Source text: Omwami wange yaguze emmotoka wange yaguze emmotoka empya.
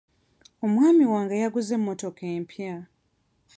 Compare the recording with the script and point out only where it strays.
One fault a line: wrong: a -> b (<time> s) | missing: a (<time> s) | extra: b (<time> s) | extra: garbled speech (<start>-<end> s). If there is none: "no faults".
missing: wange yaguze emmotoka (2.2 s)